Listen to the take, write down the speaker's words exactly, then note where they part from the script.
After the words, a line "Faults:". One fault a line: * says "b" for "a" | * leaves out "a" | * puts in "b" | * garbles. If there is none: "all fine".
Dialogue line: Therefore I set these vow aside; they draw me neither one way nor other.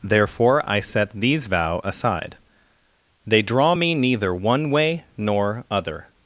Therefore I set these vow aside; they draw me neither one way nor other.
Faults:
all fine